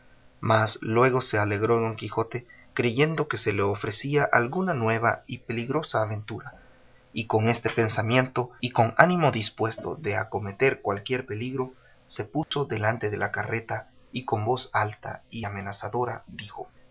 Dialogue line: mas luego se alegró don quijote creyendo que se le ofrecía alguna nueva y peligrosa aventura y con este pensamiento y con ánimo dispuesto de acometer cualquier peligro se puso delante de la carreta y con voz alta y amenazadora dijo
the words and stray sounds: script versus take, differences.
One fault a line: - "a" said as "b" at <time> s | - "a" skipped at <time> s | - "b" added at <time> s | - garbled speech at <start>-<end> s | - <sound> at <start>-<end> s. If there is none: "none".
- dropout at 12.4-12.5 s